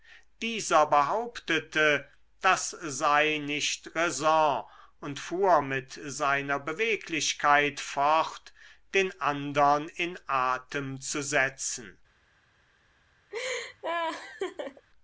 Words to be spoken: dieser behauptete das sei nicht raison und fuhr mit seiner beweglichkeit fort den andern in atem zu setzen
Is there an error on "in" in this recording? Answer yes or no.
no